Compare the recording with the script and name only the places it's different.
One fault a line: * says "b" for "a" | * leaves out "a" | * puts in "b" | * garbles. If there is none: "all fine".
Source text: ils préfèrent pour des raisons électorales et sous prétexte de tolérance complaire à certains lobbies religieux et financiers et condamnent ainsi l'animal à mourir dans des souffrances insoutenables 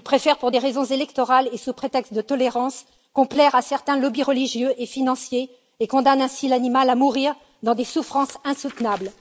all fine